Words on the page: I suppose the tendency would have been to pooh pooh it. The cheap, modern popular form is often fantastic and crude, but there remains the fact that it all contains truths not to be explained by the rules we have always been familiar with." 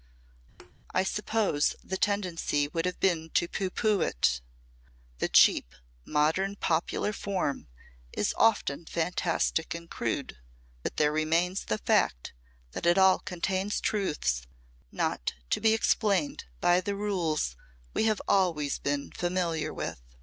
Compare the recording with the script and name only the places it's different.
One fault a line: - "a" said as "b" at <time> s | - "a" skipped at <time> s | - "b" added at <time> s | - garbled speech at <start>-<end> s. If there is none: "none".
none